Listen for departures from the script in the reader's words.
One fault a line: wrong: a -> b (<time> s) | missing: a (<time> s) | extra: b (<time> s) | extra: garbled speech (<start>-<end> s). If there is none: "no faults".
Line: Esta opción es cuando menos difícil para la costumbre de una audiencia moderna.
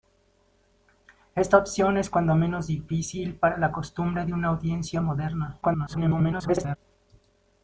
extra: garbled speech (5.6-6.8 s)